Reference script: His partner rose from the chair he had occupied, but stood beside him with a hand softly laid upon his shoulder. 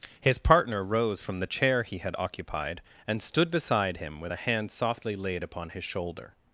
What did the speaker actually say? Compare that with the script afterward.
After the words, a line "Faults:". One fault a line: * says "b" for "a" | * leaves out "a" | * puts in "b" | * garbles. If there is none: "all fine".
His partner rose from the chair he had occupied, and stood beside him with a hand softly laid upon his shoulder.
Faults:
* says "and" for "but"